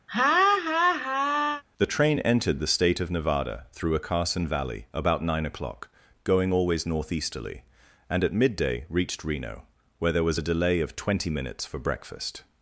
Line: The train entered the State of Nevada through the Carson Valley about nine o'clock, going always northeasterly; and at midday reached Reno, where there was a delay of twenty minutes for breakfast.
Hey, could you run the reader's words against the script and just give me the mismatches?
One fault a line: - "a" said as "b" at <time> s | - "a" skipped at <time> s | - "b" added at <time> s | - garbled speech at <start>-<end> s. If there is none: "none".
- "the" said as "a" at 4.0 s